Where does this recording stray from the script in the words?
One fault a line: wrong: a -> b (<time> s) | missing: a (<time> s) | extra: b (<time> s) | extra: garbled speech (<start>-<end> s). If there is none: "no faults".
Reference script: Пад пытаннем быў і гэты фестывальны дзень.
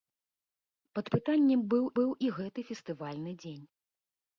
extra: быў (2.0 s)